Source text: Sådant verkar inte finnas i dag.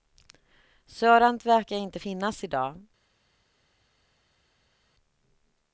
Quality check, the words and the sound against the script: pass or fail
pass